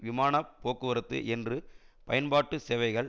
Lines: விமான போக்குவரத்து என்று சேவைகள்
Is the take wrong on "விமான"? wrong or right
right